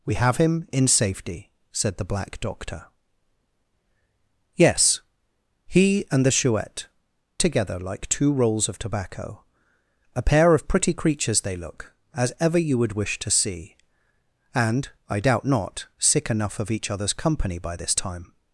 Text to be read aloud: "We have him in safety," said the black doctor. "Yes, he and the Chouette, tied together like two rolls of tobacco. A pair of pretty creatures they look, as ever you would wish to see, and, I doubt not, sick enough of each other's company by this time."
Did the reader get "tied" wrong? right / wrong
wrong